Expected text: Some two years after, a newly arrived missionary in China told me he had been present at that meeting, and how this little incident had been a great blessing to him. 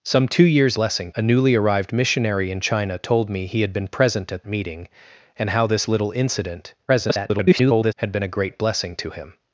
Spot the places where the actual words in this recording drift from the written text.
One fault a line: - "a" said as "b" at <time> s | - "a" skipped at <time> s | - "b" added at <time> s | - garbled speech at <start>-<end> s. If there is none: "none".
- "after" said as "blessing" at 0.7 s
- "that" skipped at 4.4 s
- garbled speech at 6.9-7.9 s